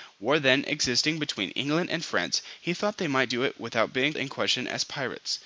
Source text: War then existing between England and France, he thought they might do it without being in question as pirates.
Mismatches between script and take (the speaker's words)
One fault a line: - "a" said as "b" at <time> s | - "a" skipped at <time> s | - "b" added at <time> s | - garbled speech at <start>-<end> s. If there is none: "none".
none